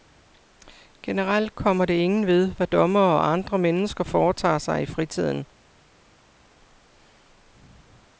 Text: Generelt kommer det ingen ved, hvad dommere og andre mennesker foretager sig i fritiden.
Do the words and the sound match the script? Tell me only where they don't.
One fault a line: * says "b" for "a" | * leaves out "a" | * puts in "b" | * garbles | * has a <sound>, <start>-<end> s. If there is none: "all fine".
all fine